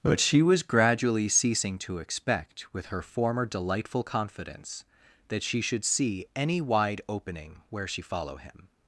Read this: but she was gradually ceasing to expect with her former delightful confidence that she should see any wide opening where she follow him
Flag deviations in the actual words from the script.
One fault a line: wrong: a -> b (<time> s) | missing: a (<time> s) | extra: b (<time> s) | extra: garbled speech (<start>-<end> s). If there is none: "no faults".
no faults